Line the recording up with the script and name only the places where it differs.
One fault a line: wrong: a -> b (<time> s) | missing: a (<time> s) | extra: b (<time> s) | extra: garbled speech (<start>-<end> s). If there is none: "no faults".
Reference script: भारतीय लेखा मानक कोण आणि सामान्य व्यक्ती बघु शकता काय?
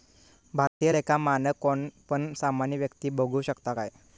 wrong: आणि -> पण (2.1 s)